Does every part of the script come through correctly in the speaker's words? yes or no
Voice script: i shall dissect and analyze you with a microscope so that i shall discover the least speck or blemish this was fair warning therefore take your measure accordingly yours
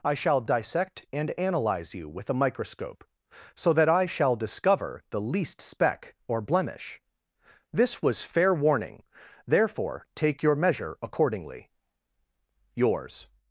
yes